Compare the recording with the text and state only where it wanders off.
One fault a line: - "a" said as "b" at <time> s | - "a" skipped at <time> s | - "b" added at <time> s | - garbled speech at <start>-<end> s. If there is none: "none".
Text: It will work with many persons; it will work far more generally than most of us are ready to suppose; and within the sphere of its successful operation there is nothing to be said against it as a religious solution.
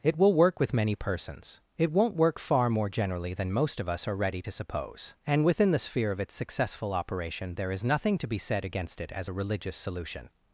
- "will" said as "won't" at 1.9 s